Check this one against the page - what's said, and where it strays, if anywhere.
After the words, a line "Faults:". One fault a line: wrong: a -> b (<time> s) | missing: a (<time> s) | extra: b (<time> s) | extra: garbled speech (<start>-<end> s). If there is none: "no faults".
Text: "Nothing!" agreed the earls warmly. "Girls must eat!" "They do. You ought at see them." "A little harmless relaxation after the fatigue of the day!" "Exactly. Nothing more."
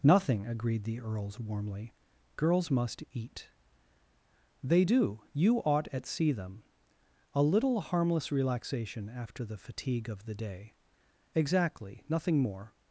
"Nothing!" agreed the earls warmly. "Girls must eat!" "They do. You ought at see them." "A little harmless relaxation after the fatigue of the day!" "Exactly. Nothing more."
Faults:
no faults